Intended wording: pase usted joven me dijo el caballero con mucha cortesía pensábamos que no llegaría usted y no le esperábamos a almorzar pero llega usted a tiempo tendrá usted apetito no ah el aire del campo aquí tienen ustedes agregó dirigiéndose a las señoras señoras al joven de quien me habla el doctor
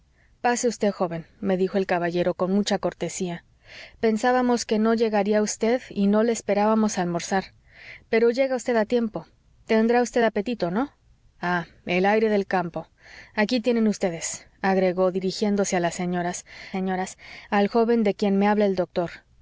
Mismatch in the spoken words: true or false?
false